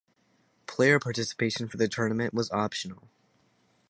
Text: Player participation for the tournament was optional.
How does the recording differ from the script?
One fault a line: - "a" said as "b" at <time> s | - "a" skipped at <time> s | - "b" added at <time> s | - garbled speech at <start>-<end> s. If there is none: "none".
none